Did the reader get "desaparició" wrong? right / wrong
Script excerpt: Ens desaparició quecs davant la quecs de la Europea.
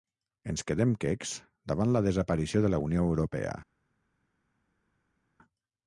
wrong